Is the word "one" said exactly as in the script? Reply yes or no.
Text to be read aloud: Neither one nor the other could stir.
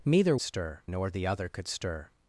no